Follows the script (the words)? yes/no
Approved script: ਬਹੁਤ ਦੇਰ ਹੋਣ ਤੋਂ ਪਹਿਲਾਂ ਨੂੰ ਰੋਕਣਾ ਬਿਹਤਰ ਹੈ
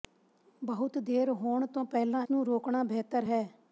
yes